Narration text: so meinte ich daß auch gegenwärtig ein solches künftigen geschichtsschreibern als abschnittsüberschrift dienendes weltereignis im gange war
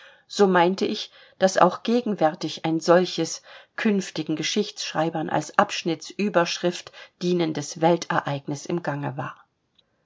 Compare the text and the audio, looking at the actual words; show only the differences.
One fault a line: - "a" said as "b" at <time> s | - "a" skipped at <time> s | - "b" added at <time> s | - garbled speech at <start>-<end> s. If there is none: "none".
none